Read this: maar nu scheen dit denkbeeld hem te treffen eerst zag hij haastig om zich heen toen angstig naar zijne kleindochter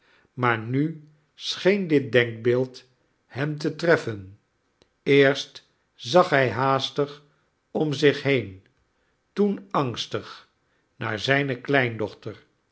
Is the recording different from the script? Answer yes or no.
no